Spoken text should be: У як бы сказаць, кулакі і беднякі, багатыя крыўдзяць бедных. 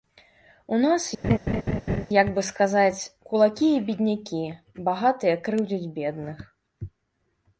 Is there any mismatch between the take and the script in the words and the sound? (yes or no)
yes